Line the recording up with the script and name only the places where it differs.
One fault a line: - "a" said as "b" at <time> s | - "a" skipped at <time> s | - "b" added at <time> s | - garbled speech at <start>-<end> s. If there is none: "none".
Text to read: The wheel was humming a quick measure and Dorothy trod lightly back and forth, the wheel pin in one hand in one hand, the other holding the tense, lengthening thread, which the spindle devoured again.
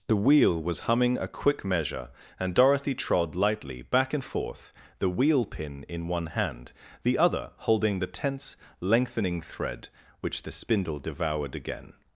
- "in one hand" skipped at 6.7 s